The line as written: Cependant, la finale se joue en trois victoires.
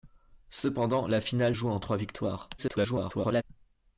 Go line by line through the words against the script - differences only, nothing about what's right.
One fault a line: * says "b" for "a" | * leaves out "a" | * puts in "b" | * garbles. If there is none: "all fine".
* leaves out "se"
* garbles